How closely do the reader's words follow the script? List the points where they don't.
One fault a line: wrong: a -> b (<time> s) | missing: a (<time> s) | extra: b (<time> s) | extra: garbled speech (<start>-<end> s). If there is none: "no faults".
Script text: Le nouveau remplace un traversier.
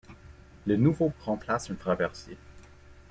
no faults